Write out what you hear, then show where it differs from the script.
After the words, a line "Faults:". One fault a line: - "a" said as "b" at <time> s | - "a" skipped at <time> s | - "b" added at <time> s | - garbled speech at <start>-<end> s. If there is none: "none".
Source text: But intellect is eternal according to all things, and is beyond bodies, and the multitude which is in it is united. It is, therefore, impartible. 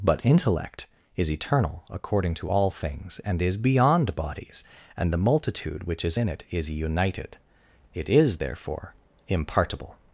But intellect is eternal according to all things, and is beyond bodies, and the multitude which is in it is united. It is, therefore, impartible.
Faults:
none